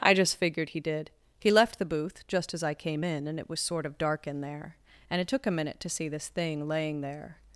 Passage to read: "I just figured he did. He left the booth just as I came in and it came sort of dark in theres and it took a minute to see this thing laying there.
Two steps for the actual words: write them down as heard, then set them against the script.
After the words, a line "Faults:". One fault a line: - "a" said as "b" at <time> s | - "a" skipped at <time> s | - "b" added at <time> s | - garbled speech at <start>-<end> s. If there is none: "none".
"I just figured he did. He left the booth just as I came in and it was sort of dark in there and it took a minute to see this thing laying there.
Faults:
- "came" said as "was" at 3.5 s
- "theres" said as "there" at 4.4 s